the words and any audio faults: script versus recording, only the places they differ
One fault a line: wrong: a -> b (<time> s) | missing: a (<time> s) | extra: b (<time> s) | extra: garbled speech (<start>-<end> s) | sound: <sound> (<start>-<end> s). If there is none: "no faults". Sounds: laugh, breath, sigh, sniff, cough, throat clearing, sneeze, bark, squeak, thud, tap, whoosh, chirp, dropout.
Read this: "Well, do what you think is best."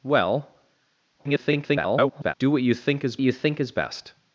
extra: garbled speech (1.2-2.3 s)
extra: you think is (3.2 s)